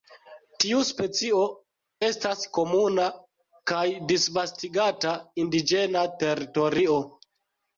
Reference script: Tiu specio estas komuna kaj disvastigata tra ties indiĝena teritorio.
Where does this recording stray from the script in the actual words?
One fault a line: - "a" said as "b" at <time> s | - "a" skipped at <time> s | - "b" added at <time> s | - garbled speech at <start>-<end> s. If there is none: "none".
- "tra ties" skipped at 5.1 s